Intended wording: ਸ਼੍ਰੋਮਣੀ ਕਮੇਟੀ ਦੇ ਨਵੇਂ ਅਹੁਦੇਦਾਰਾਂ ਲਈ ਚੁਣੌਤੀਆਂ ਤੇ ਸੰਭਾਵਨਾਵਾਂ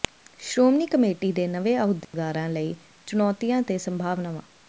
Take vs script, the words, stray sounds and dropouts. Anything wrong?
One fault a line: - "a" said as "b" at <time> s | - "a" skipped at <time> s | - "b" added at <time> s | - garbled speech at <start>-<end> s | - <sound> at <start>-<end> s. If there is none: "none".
- dropout at 2.0-2.1 s